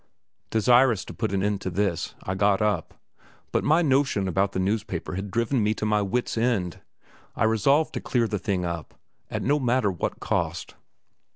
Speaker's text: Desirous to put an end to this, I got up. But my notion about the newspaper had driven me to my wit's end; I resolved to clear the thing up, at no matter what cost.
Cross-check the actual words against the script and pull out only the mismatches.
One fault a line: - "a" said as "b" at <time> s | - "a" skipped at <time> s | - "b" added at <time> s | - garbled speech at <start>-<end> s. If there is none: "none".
none